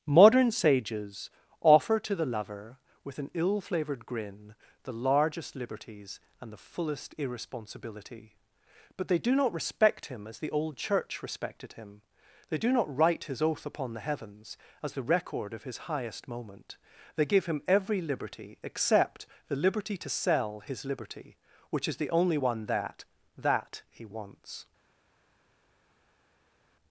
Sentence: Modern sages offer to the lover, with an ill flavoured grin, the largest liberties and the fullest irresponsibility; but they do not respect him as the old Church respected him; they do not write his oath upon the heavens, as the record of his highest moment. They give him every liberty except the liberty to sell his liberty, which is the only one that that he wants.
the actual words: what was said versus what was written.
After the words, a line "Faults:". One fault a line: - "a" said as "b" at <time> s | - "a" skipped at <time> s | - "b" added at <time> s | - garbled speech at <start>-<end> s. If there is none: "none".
Modern sages offer to the lover, with an ill flavoured grin, the largest liberties and the fullest irresponsibility; but they do not respect him as the old Church respected him; they do not write his oath upon the heavens, as the record of his highest moment. They give him every liberty except the liberty to sell his liberty, which is the only one that that he wants.
Faults:
none